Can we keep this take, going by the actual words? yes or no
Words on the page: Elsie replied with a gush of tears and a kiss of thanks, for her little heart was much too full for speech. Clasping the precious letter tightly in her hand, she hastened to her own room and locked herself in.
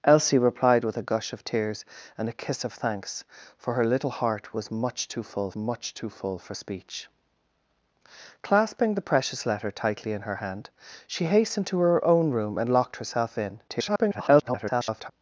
no